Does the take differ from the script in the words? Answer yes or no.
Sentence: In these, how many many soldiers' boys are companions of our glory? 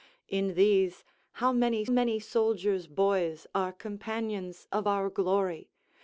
no